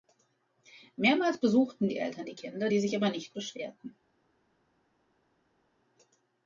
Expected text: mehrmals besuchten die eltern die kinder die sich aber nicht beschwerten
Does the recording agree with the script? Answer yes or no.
yes